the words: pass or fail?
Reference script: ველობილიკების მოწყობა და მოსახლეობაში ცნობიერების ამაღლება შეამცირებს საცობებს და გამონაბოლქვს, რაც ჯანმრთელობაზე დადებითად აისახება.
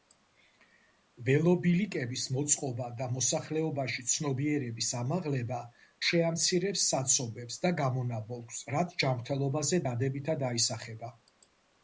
pass